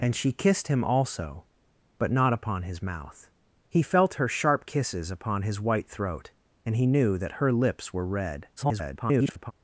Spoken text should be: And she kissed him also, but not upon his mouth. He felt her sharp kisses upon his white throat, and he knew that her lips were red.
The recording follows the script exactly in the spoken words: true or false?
false